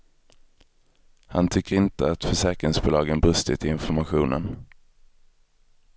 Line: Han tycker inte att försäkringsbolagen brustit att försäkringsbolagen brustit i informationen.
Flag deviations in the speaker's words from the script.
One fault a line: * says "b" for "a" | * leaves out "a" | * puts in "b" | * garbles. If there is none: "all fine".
* leaves out "att försäkringsbolagen brustit"